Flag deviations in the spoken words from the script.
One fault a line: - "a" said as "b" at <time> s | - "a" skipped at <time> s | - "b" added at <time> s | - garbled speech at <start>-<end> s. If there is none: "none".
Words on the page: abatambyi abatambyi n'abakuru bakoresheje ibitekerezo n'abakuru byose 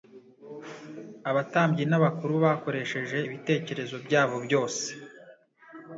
- "abatambyi" skipped at 1.8 s
- "n'abakuru" said as "byabo" at 4.0 s